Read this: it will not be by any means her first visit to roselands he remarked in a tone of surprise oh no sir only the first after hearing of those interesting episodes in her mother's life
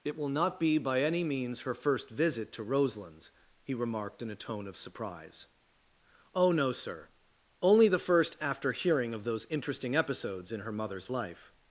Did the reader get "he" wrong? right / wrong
right